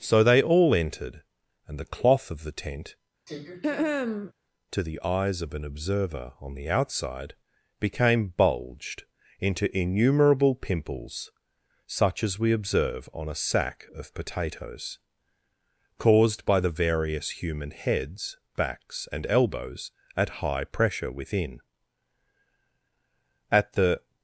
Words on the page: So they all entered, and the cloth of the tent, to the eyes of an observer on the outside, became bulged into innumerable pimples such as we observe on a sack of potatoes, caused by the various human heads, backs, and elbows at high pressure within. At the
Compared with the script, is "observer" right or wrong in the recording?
right